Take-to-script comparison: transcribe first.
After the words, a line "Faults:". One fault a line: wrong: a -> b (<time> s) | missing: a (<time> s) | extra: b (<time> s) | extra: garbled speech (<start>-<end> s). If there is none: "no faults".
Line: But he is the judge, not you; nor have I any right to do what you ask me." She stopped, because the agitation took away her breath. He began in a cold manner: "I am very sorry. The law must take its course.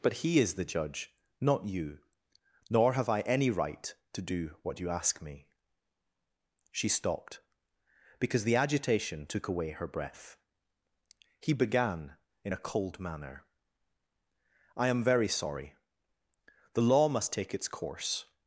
But he is the judge, not you; nor have I any right to do what you ask me." She stopped, because the agitation took away her breath. He began in a cold manner: "I am very sorry. The law must take its course.
Faults:
no faults